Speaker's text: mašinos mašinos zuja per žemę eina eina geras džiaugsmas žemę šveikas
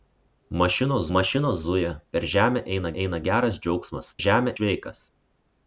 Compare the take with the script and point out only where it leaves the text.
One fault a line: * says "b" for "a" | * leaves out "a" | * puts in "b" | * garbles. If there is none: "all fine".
all fine